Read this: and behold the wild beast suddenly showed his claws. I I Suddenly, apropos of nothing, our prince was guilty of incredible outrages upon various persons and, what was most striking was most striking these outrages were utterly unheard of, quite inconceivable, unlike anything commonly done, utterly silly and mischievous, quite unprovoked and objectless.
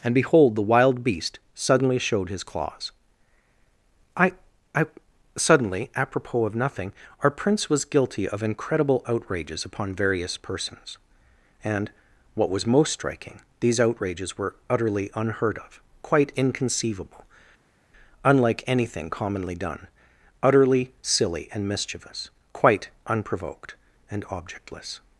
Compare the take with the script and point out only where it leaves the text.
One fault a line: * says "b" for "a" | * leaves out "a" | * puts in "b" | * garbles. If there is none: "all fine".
* leaves out "was most striking"